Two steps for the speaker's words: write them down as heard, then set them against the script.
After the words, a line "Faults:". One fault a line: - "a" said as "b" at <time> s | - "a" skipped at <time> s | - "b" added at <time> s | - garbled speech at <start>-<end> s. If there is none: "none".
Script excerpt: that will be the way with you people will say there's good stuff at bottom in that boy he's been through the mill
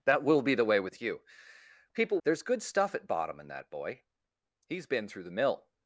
that will be the way with you people there's good stuff at bottom in that boy he's been through the mill
Faults:
- "will say" skipped at 2.2 s